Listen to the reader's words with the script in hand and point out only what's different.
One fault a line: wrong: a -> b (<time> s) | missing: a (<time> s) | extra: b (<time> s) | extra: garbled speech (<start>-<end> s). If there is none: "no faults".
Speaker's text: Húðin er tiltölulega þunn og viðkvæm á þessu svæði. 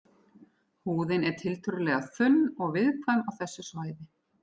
no faults